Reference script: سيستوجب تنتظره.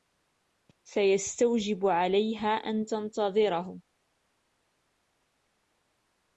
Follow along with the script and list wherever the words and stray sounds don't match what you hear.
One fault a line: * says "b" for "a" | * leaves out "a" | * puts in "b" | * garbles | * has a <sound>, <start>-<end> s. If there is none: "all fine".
* puts in "عليها أن"